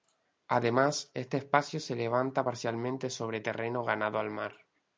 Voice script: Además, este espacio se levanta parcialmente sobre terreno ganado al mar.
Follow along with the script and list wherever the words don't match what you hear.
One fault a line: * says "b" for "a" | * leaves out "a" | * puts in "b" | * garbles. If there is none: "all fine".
all fine